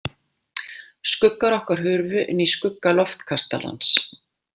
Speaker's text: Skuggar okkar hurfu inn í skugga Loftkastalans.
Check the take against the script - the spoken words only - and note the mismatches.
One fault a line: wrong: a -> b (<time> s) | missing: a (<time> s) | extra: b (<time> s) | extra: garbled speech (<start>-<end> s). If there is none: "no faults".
no faults